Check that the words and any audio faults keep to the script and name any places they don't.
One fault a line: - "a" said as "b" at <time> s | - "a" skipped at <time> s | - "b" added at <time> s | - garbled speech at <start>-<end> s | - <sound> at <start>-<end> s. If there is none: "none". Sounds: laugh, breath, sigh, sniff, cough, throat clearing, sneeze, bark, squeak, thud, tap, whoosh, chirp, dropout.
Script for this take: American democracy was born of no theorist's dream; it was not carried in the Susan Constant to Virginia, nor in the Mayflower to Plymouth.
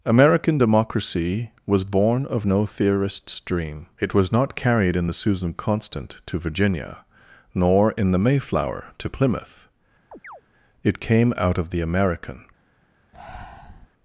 - chirp at 10.1-10.4 s
- "It came out of the American" added at 10.8 s
- breath at 13.1-13.9 s